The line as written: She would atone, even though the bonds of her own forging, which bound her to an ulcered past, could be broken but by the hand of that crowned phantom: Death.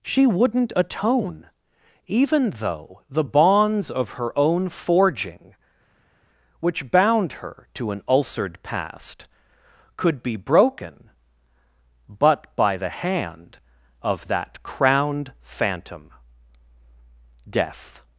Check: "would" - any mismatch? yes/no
yes